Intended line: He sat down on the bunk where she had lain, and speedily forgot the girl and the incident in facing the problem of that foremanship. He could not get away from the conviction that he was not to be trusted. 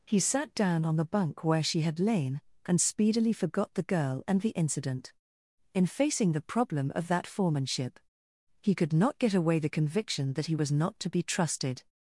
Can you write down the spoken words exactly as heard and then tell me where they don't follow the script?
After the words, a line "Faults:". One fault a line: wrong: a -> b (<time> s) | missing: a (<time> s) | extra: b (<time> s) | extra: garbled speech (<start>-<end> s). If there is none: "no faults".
He sat down on the bunk where she had lain, and speedily forgot the girl and the incident in facing the problem of that foremanship. He could not get away the conviction that he was not to be trusted.
Faults:
missing: from (9.6 s)